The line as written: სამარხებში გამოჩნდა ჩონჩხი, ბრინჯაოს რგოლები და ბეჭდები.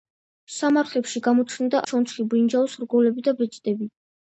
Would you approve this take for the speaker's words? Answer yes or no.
yes